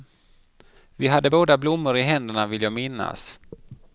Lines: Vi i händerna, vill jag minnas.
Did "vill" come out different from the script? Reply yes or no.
no